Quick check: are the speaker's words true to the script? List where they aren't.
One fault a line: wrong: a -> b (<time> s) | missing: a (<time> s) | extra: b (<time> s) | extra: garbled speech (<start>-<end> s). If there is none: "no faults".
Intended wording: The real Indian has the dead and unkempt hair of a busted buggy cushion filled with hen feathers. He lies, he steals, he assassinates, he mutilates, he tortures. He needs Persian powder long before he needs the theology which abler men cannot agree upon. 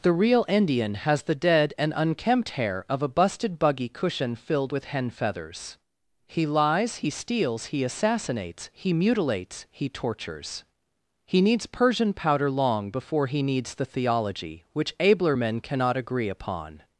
no faults